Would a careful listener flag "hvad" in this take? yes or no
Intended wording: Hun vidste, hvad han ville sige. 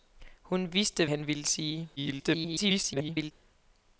yes